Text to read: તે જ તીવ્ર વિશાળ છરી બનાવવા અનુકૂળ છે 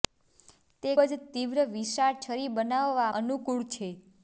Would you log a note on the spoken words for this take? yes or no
no